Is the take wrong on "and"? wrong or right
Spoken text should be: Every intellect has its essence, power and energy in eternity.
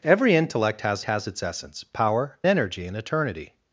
wrong